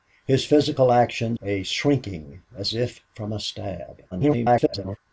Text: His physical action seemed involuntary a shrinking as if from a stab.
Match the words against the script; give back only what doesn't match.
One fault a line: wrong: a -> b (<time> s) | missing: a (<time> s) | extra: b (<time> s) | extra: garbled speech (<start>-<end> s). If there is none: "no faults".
missing: seemed involuntary (1.4 s)
extra: garbled speech (4.1-5.0 s)